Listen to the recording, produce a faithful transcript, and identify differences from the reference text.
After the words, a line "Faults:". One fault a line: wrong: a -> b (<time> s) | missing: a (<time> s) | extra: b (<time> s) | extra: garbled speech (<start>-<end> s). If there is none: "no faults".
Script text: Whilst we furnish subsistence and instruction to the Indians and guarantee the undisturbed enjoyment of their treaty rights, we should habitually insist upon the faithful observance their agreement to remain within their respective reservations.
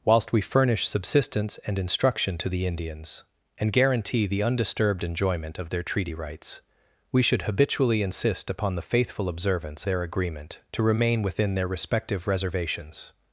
Whilst we furnish subsistence and instruction to the Indians and guarantee the undisturbed enjoyment of their treaty rights, we should habitually insist upon the faithful observance their agreement to remain within their respective reservations.
Faults:
no faults